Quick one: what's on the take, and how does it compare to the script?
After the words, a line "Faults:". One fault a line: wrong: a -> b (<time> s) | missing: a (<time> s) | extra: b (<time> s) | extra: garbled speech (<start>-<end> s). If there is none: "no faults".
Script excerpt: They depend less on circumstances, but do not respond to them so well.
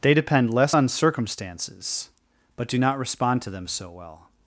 They depend less on circumstances, but do not respond to them so well.
Faults:
no faults